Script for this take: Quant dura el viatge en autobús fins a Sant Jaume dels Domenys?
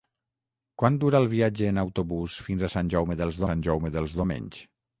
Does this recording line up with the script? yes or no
no